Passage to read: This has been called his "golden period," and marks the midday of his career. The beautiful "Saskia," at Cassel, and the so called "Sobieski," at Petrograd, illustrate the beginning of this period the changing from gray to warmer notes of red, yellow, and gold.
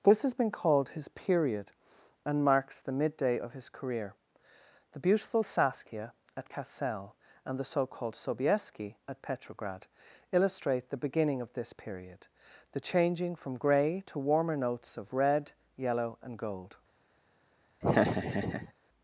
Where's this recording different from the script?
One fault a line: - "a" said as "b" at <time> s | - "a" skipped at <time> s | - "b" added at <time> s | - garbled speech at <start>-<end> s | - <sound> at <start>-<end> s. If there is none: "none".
- "golden" skipped at 1.1 s
- laugh at 17.8-18.7 s